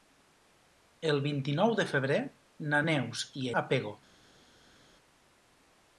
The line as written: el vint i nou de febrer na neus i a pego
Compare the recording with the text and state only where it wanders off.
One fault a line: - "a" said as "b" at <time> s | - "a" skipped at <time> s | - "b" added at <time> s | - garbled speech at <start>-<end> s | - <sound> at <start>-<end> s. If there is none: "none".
none